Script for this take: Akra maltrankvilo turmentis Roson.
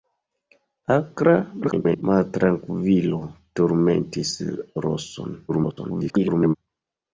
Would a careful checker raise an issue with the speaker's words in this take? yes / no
yes